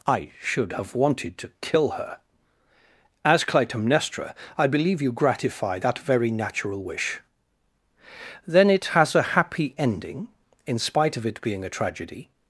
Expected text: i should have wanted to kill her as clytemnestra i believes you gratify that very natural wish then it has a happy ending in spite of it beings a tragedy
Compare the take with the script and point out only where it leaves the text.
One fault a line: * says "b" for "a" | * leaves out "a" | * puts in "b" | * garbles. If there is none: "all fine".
* says "believe" for "believes"
* says "being" for "beings"